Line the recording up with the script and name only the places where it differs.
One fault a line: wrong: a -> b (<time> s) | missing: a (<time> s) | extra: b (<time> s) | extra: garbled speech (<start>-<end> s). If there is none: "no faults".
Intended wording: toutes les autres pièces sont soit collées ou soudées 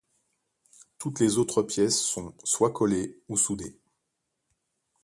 no faults